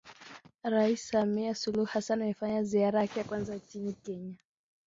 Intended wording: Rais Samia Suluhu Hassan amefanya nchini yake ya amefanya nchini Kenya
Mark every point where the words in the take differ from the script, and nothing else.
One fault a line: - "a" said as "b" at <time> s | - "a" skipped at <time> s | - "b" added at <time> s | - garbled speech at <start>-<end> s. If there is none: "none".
- "nchini" said as "ziara" at 2.6 s
- "amefanya" said as "kwanza" at 3.2 s